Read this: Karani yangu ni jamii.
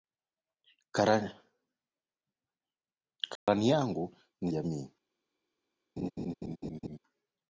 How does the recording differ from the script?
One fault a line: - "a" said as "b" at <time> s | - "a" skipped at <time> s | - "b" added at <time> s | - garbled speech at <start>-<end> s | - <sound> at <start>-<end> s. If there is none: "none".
- dropout at 3.4-3.5 s
- laugh at 6.0-7.0 s